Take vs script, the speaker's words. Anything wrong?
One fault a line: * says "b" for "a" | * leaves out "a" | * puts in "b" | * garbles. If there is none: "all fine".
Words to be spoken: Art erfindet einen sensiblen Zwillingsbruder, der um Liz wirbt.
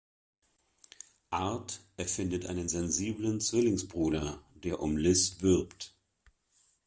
all fine